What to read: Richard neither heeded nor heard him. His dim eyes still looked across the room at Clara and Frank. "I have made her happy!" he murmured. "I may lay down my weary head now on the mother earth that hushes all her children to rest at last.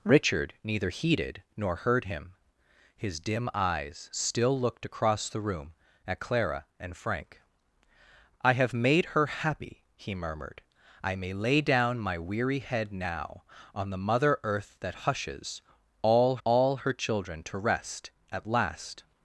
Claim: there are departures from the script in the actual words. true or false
true